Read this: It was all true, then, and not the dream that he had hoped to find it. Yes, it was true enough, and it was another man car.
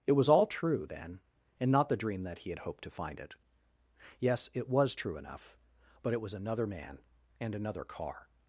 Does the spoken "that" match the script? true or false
true